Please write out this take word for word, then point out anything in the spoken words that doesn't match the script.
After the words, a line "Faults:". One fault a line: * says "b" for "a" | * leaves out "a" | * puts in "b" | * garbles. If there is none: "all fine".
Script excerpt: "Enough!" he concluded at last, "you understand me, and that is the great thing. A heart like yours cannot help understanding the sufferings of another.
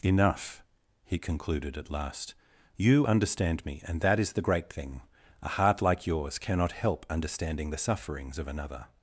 "Enough!" he concluded at last, "you understand me, and that is the great thing. A heart like yours cannot help understanding the sufferings of another.
Faults:
all fine